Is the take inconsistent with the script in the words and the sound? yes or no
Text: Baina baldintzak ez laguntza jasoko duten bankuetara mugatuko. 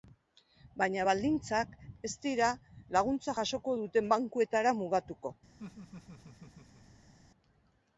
yes